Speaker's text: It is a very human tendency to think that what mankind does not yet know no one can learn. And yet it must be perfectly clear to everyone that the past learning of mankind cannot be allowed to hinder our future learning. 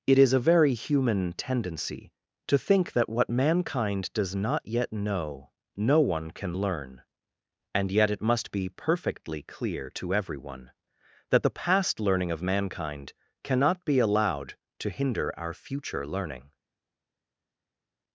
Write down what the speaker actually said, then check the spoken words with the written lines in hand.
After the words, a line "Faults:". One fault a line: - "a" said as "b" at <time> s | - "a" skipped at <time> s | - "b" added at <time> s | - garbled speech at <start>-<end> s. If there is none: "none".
It is a very human tendency to think that what mankind does not yet know no one can learn. And yet it must be perfectly clear to everyone that the past learning of mankind cannot be allowed to hinder our future learning.
Faults:
none